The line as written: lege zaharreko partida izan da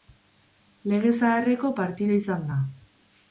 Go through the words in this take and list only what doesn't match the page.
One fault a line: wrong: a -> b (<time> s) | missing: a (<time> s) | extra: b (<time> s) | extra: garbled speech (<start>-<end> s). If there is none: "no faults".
no faults